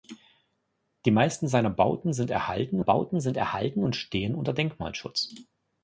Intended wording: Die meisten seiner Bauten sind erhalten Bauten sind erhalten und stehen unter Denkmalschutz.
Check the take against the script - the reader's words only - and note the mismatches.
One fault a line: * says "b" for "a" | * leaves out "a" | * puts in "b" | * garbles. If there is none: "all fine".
all fine